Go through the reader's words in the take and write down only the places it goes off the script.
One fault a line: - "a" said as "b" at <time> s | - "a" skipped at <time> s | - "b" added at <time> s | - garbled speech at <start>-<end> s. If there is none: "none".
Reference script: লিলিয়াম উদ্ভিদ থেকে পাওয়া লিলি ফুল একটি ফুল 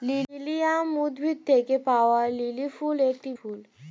none